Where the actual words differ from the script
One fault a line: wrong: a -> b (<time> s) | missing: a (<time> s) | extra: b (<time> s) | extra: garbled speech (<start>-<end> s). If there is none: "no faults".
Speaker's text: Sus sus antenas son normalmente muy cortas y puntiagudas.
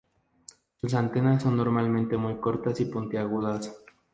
missing: sus (0.9 s)